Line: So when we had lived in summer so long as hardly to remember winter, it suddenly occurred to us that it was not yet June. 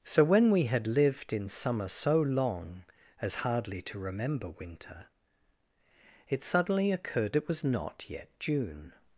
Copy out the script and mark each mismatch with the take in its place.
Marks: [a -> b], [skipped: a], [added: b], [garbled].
So when we had lived in summer so long as hardly to remember winter, it suddenly occurred [skipped: to us that] it was not yet June.